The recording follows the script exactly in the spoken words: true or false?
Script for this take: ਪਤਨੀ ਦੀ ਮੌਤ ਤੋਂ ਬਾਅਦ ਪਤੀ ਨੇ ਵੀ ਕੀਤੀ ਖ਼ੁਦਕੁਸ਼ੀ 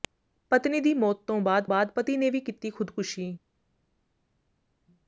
false